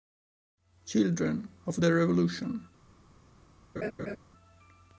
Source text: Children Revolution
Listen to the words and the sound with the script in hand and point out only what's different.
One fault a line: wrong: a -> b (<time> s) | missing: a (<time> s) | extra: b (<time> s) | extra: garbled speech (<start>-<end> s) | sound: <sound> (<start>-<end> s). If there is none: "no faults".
extra: of the (1.7 s)
sound: laugh (3.8-4.2 s)